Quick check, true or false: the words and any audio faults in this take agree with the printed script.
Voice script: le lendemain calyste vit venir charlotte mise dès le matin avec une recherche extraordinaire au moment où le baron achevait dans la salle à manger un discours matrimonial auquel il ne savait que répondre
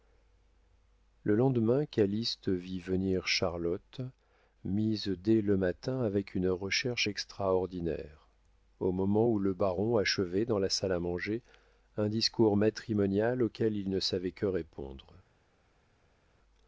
true